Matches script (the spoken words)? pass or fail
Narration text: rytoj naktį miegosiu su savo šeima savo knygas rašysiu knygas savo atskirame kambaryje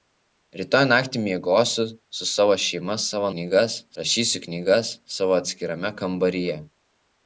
pass